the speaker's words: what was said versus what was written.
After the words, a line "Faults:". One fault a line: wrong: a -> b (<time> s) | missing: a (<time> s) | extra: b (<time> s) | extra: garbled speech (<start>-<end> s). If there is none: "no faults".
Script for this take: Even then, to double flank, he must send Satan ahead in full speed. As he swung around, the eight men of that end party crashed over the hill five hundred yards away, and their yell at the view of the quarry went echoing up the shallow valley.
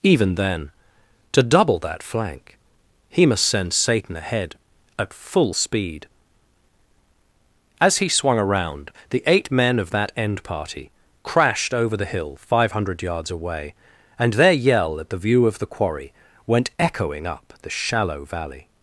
Even then, to double that flank, he must send Satan ahead at full speed. As he swung around, the eight men of that end party crashed over the hill five hundred yards away, and their yell at the view of the quarry went echoing up the shallow valley.
Faults:
extra: that (1.8 s)
wrong: in -> at (5.0 s)